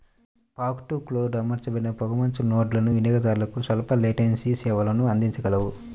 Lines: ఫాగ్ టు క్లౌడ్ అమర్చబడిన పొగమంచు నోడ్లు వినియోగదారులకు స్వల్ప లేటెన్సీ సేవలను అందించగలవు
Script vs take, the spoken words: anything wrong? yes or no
no